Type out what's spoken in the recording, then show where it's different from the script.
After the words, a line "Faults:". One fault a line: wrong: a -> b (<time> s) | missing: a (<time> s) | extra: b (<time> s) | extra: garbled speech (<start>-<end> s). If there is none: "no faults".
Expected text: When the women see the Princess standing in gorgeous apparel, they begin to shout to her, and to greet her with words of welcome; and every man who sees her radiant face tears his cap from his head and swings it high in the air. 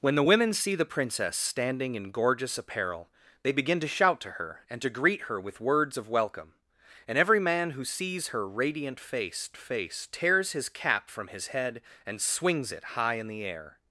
When the women see the Princess standing in gorgeous apparel, they begin to shout to her, and to greet her with words of welcome; and every man who sees her radiant face face tears his cap from his head and swings it high in the air.
Faults:
extra: face (9.5 s)